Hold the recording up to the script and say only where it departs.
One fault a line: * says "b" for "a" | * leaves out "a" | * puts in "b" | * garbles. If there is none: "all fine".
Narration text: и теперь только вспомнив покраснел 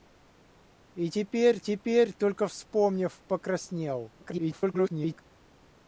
* puts in "теперь"
* garbles